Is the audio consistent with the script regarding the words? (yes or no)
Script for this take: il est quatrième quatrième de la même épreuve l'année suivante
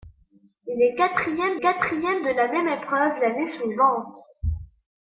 yes